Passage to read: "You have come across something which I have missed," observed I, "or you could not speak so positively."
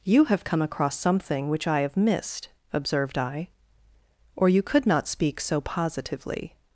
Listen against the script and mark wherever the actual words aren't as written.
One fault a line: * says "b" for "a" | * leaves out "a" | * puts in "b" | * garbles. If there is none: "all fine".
all fine